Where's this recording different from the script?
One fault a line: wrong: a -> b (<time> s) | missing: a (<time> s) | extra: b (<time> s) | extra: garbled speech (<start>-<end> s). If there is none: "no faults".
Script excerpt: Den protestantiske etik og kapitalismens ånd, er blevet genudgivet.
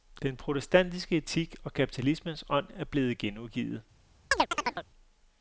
no faults